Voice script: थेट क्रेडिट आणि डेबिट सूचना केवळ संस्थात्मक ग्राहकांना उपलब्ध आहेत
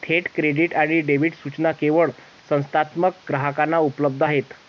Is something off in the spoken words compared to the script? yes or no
no